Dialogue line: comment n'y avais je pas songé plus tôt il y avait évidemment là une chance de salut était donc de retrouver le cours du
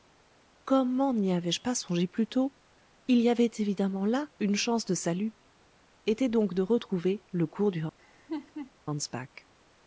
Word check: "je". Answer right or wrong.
right